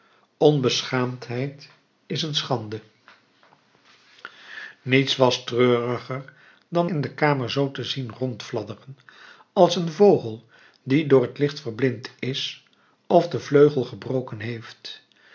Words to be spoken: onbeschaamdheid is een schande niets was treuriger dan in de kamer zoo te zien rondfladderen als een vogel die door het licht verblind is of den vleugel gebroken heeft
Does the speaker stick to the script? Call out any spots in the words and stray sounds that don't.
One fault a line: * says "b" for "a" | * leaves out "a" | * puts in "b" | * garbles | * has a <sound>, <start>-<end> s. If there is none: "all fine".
all fine